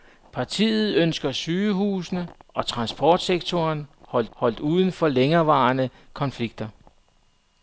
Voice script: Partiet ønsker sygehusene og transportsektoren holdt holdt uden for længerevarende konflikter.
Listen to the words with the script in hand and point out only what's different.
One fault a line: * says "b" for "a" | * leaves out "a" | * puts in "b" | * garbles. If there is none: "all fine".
all fine